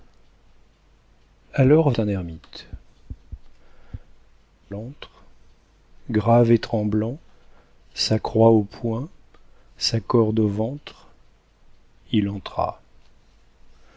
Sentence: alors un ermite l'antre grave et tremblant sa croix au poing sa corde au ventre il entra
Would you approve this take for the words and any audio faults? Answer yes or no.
yes